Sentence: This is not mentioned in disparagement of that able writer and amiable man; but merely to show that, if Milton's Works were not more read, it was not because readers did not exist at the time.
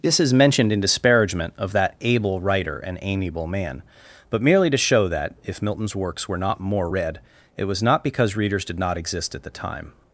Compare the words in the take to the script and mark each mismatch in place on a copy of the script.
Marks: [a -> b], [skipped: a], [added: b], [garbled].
This is [skipped: not] mentioned in disparagement of that able writer and amiable man; but merely to show that, if Milton's Works were not more read, it was not because readers did not exist at the time.